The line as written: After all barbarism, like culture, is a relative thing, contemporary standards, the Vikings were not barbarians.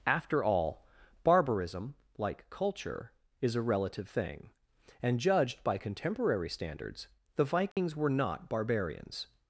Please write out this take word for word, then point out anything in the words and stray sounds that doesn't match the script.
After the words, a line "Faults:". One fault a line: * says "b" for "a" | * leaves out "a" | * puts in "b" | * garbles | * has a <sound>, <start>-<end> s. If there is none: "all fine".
After all barbarism, like culture, is a relative thing, and judged by contemporary standards, the Vikings were not barbarians.
Faults:
* puts in "and judged by"
* has a dropout, 7.7-7.8 s